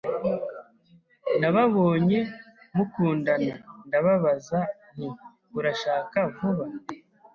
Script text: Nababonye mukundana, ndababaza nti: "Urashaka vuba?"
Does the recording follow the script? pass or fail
pass